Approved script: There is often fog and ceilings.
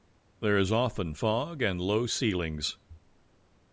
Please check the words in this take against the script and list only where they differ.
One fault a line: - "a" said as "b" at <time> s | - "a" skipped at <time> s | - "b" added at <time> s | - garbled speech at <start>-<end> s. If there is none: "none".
- "low" added at 1.8 s